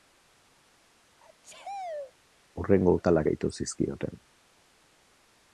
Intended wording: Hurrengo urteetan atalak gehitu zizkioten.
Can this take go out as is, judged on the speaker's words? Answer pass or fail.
fail